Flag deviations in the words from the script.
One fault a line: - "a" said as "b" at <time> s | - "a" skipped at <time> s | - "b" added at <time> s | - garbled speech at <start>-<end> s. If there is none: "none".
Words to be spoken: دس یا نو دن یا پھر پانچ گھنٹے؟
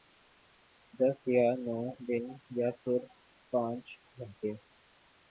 none